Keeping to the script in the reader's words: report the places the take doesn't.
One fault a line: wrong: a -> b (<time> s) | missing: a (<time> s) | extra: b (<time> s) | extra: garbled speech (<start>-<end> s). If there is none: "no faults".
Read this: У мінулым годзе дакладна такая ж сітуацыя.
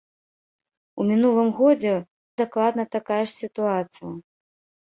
no faults